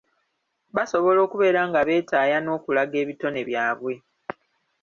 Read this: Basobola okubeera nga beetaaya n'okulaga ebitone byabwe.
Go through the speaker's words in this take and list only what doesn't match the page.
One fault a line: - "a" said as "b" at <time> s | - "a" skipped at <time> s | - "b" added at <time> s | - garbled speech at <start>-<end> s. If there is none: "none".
none